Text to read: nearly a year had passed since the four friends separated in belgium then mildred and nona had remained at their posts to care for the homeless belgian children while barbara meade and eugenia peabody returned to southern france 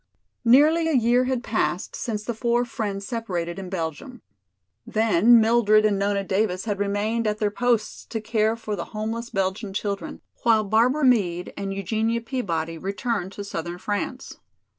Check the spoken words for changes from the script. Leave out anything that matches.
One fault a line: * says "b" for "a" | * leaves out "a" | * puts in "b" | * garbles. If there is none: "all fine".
* puts in "davis"